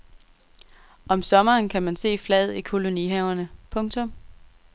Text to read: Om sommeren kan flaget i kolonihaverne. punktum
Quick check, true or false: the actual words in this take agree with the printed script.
false